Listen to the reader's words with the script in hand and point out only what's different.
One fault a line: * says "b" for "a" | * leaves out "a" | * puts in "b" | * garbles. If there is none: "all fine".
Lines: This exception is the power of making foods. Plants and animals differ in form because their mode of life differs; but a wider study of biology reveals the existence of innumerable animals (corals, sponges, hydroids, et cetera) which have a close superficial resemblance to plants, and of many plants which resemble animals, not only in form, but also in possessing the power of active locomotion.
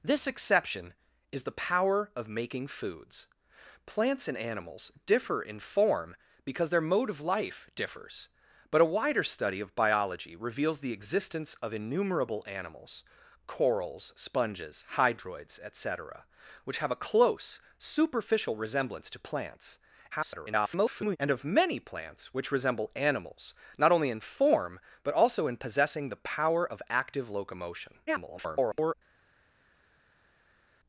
* garbles
* garbles